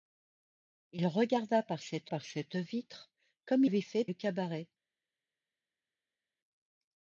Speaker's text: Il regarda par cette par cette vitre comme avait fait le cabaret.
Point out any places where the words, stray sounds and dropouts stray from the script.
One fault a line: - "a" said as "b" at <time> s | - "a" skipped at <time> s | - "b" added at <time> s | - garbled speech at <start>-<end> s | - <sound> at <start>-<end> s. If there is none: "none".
none